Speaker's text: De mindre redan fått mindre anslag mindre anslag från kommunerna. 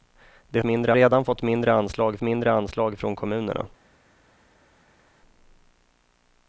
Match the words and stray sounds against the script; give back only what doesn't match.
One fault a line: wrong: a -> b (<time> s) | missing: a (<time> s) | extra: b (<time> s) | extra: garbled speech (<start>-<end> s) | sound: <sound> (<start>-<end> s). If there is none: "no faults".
no faults